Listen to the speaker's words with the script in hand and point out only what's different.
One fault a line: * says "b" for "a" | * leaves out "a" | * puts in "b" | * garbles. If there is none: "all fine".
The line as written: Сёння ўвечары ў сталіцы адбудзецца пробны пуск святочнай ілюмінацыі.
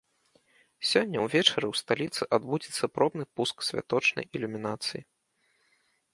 all fine